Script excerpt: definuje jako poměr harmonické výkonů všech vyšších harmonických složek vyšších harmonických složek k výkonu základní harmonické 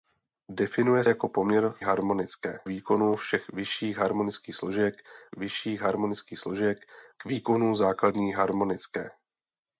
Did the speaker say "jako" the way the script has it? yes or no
yes